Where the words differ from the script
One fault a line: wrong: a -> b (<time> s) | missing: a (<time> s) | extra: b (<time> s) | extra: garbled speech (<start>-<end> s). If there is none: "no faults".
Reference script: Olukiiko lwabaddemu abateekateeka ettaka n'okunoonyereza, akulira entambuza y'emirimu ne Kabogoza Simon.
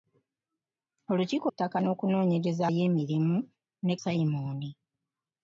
missing: lwabaddemu abateekateeka (1.5 s)
missing: akulira entambuza (2.6 s)
missing: Kabogoza (3.9 s)